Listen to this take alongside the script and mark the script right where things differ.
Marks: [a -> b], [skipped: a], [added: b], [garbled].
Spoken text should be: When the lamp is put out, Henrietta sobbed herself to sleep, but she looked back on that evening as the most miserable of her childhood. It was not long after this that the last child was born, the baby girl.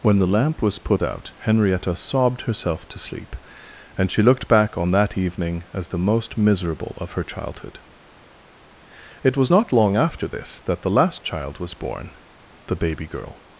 When the lamp [is -> was] put out, Henrietta sobbed herself to sleep, [but -> and] she looked back on that evening as the most miserable of her childhood. It was not long after this that the last child was born, the baby girl.